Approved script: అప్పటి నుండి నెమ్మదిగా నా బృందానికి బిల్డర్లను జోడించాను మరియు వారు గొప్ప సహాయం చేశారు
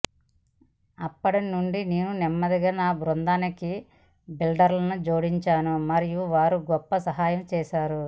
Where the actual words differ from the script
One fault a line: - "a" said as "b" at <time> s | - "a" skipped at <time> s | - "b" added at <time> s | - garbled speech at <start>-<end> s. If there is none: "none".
- "నేను" added at 1.9 s